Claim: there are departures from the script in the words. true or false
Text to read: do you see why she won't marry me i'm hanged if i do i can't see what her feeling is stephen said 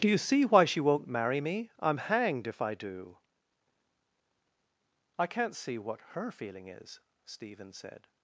false